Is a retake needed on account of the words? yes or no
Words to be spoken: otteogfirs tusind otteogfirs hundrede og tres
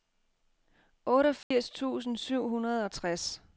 yes